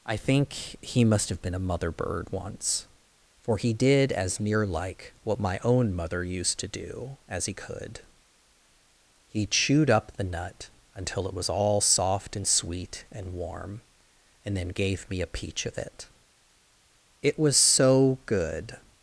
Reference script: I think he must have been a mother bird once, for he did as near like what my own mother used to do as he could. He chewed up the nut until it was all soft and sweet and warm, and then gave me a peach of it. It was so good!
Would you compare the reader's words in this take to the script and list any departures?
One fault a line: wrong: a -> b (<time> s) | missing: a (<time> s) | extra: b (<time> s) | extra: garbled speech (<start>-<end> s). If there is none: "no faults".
no faults